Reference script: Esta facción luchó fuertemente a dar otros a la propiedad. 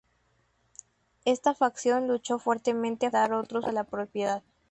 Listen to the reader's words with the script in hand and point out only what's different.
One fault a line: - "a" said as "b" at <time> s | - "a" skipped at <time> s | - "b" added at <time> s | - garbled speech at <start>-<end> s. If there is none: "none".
none